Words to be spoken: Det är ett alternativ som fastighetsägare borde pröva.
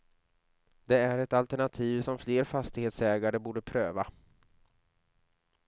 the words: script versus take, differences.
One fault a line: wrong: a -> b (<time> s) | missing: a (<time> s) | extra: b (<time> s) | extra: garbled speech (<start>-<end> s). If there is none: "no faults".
extra: fler (2.2 s)